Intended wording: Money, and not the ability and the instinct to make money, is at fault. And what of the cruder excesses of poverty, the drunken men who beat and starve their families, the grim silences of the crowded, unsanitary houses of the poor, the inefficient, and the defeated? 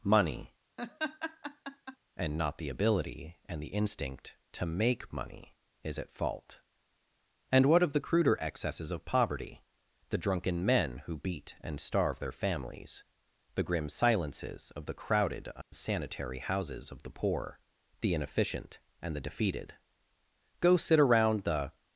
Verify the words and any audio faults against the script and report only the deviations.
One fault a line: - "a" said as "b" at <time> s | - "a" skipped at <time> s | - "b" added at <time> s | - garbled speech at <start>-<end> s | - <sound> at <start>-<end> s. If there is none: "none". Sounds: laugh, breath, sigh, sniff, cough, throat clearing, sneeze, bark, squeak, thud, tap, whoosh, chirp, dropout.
- laugh at 0.8-2.0 s
- dropout at 15.6-15.7 s
- "Go sit around the" added at 20.6 s